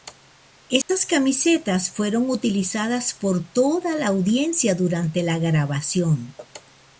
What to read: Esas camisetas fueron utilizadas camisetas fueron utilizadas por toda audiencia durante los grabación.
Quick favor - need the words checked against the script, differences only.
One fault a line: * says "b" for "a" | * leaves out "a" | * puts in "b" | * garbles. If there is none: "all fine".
* leaves out "camisetas fueron utilizadas"
* puts in "la"
* says "la" for "los"